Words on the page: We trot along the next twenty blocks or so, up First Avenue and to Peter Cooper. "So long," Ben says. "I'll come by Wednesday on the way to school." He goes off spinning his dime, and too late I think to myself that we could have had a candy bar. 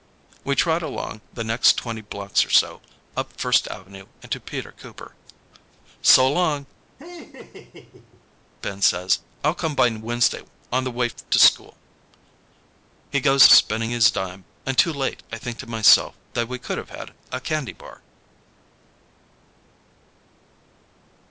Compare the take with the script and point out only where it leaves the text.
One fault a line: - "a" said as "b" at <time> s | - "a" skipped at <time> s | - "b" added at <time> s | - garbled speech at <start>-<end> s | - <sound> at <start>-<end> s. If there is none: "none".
- laugh at 7.0-8.3 s
- "off" skipped at 13.5 s